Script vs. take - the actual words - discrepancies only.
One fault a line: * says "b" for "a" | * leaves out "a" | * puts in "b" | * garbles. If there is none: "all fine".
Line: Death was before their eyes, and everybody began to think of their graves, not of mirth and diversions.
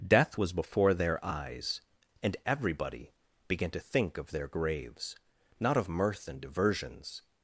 all fine